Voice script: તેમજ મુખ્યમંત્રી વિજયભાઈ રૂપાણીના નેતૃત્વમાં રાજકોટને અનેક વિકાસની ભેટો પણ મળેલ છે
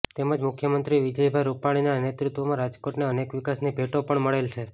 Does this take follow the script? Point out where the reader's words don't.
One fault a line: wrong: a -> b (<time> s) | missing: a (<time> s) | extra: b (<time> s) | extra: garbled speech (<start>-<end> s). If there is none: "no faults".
no faults